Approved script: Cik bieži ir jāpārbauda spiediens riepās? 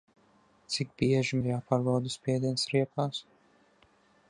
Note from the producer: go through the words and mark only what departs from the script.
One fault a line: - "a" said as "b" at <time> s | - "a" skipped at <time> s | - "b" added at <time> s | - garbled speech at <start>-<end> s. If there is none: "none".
none